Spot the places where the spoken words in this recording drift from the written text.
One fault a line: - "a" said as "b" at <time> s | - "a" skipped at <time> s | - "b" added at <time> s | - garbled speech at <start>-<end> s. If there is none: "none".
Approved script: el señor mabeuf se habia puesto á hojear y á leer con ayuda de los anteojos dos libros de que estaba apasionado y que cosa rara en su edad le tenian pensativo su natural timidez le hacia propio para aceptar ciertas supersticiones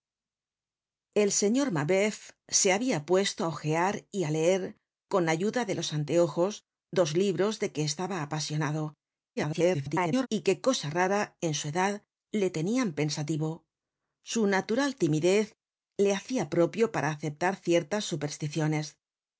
- garbled speech at 9.4-10.3 s